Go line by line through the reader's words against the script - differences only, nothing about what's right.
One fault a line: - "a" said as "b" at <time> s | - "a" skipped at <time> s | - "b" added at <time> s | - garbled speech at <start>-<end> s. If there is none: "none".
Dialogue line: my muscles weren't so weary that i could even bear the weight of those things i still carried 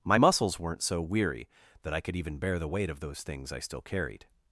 none